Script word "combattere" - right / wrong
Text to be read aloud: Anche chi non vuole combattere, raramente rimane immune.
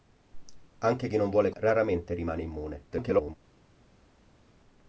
wrong